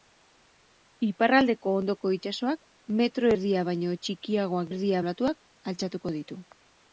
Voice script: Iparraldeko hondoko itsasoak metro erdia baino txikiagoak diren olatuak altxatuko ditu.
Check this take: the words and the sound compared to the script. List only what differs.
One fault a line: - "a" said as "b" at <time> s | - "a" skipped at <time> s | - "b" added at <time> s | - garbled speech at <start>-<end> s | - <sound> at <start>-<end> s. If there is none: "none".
- "diren" said as "erdia" at 4.7 s